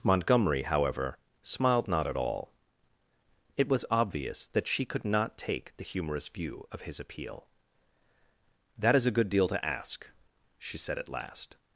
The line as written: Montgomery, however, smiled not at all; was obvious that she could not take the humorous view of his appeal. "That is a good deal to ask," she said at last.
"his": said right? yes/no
yes